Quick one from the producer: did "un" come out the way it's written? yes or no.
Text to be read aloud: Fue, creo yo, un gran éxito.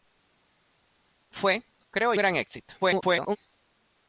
no